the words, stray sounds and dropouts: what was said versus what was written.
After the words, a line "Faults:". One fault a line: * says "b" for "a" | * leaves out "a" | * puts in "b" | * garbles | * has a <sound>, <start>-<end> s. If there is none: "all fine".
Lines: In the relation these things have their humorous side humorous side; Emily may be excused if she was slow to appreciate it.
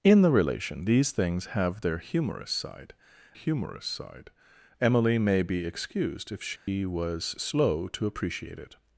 In the relation these things have their humorous side humorous side; Emily may be excused if she was slow to appreciate it.
Faults:
* has a dropout, 6.6-6.7 s